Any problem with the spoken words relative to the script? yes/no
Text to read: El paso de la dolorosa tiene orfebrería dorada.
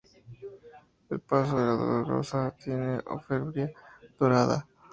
no